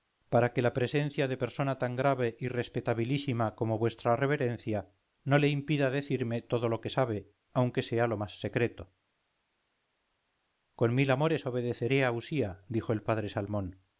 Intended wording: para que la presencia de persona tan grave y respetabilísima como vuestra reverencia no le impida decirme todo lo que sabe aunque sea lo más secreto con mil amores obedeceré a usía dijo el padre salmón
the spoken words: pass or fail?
pass